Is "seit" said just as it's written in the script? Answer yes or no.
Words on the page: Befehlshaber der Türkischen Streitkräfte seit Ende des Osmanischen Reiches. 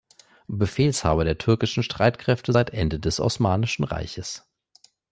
yes